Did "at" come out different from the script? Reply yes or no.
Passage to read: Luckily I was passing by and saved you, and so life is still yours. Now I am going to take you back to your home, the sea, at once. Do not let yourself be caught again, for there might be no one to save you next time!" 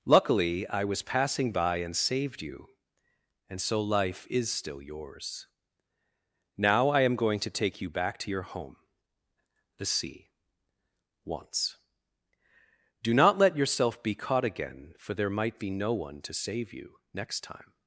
yes